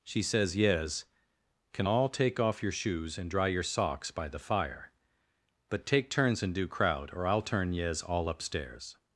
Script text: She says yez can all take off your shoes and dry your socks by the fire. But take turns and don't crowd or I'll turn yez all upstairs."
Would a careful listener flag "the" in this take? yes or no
no